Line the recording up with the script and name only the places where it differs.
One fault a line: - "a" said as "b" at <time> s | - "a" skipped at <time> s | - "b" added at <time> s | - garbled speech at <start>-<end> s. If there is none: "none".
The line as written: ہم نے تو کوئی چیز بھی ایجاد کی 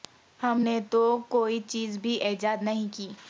- "نہیں" added at 2.6 s